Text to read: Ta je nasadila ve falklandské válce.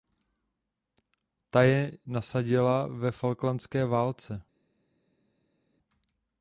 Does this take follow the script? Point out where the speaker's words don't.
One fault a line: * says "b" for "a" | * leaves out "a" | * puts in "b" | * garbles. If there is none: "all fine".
all fine